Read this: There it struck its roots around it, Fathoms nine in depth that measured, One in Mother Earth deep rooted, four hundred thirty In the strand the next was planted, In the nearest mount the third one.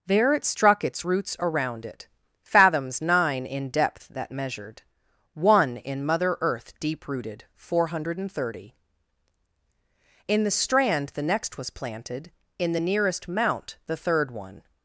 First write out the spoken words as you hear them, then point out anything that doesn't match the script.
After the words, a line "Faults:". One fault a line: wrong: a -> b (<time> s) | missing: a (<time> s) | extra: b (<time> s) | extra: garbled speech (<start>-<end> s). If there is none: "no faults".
There it struck its roots around it, Fathoms nine in depth that measured, One in Mother Earth deep rooted, four hundred thirty In the strand the next was planted, In the nearest mount the third one.
Faults:
no faults